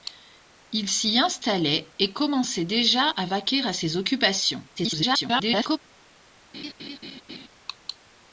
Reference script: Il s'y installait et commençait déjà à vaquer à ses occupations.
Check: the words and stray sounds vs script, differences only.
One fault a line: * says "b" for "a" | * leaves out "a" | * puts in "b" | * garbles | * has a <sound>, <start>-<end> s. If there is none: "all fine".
* garbles
* has a laugh, 6.5-7.5 s